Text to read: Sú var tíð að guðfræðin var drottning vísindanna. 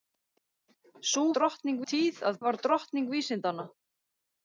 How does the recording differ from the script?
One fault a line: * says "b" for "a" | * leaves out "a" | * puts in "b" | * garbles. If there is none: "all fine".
* says "drottning" for "var"
* leaves out "guðfræðin"